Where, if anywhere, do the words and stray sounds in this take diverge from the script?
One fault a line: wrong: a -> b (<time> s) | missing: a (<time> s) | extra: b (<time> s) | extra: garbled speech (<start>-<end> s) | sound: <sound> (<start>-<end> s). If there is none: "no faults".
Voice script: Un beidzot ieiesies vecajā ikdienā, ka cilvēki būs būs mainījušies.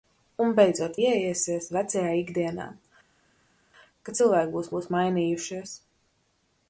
no faults